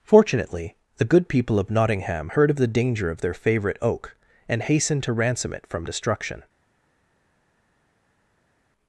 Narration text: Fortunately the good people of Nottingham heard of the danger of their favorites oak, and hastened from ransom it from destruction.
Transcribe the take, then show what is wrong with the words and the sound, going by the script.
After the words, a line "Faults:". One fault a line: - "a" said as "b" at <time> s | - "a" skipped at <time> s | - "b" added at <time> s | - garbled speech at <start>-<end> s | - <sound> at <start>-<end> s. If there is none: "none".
Fortunately the good people of Nottingham heard of the danger of their favorite oak, and hastened to ransom it from destruction.
Faults:
- "favorites" said as "favorite" at 3.3 s
- "from" said as "to" at 5.0 s